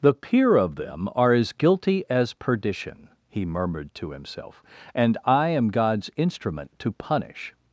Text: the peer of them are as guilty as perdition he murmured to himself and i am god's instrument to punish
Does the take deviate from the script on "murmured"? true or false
false